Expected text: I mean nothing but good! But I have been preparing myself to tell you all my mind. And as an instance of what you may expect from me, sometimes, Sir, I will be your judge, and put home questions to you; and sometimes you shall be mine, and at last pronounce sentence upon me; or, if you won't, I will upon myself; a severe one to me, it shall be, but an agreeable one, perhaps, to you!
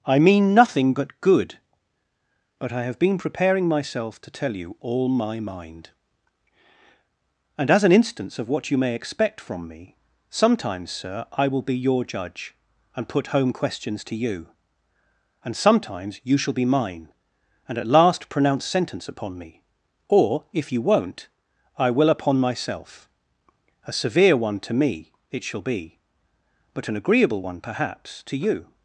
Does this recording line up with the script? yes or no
yes